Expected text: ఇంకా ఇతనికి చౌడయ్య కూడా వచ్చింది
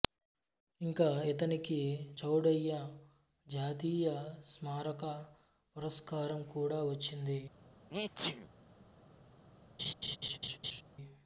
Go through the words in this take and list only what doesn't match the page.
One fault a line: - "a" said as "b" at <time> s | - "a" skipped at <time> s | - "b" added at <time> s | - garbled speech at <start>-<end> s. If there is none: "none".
- "జాతీయ స్మారక పురస్కారం" added at 3.5 s